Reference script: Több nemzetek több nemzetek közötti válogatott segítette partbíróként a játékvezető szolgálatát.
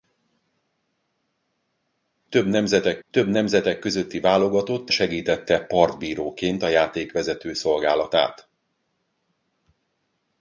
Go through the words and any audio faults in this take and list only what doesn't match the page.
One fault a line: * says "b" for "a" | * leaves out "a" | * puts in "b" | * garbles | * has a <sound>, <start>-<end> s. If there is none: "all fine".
all fine